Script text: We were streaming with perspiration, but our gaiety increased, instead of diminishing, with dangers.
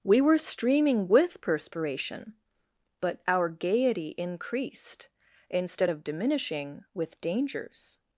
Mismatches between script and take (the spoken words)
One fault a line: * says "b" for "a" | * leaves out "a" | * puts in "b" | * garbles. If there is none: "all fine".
all fine